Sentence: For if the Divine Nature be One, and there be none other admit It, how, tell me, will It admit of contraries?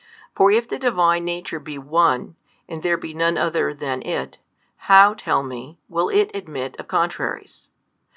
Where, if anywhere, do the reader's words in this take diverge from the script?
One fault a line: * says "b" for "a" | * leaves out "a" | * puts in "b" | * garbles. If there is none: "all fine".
* says "than" for "admit"